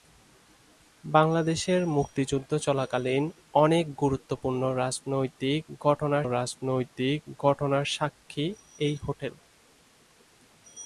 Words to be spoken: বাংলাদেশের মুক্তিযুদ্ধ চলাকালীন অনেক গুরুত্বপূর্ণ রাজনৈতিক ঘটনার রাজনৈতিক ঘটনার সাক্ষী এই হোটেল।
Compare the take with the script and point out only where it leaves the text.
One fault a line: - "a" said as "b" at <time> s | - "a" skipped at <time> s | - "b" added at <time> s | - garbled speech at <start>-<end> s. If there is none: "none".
none